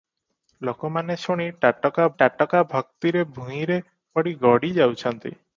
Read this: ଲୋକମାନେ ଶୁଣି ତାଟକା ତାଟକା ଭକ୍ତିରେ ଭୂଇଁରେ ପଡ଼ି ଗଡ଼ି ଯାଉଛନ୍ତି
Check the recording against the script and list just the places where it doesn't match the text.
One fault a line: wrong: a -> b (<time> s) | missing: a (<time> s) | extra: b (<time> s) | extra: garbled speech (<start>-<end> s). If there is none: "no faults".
no faults